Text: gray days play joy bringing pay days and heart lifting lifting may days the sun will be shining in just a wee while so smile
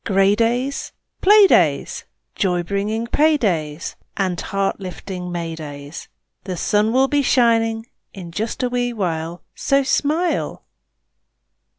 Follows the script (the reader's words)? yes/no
no